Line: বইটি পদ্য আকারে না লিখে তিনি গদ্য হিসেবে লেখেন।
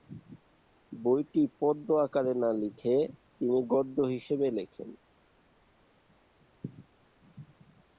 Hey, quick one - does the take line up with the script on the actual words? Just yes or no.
yes